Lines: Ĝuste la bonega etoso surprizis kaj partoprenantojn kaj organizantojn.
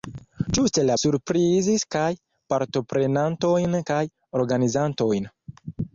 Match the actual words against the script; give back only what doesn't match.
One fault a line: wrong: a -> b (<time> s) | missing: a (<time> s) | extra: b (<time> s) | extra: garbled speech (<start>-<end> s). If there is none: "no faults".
missing: bonega etoso (0.9 s)